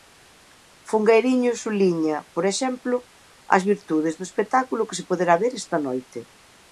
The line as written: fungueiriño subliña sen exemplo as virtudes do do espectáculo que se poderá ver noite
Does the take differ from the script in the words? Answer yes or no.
yes